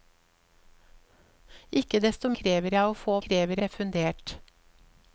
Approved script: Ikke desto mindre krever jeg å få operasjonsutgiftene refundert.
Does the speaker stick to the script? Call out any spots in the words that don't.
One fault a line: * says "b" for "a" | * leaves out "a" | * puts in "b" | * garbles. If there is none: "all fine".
* leaves out "mindre"
* says "krever" for "operasjonsutgiftene"